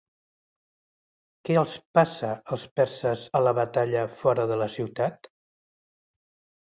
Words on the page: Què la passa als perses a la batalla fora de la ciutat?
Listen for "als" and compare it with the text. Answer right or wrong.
right